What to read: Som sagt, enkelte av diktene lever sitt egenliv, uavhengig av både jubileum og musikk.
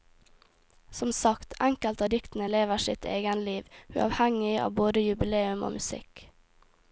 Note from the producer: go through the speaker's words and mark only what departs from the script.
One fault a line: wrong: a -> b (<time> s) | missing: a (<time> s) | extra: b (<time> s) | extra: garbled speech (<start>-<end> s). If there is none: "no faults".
no faults